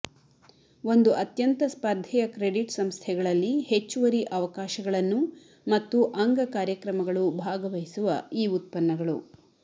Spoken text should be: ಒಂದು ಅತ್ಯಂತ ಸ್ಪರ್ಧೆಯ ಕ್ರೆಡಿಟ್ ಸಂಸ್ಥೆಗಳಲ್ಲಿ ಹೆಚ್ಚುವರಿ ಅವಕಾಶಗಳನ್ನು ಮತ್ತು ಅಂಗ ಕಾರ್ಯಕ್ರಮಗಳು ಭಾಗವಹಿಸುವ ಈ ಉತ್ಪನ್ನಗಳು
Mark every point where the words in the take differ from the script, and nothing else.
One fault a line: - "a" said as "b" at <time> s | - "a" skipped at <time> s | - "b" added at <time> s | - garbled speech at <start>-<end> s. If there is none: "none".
none